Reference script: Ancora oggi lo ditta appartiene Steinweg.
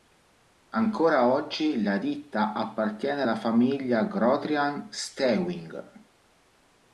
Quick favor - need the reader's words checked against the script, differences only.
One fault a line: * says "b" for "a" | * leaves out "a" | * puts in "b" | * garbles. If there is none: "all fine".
* says "la" for "lo"
* puts in "alla famiglia Grotrian"